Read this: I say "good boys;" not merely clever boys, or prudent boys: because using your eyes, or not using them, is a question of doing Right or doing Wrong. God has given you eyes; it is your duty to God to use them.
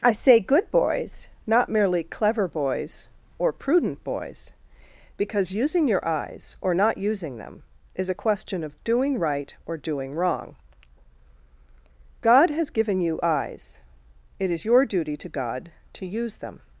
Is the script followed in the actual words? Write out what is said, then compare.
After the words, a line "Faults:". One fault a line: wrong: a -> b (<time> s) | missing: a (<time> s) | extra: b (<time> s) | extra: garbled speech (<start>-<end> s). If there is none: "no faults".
I say "good boys;" not merely clever boys, or prudent boys: because using your eyes, or not using them, is a question of doing Right or doing Wrong. God has given you eyes; it is your duty to God to use them.
Faults:
no faults